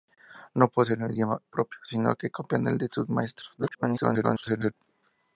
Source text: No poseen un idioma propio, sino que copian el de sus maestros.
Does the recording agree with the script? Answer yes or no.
no